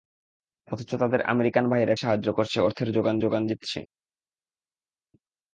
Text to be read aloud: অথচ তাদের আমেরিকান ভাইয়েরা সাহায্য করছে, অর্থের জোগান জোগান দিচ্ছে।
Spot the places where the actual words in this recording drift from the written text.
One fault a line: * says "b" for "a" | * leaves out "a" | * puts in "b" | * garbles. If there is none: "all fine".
all fine